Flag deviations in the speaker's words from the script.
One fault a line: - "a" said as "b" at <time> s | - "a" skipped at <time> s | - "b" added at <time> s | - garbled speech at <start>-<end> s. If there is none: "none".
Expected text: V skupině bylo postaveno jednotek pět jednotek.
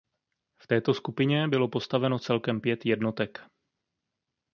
- "této" added at 0.6 s
- "jednotek" said as "celkem" at 2.2 s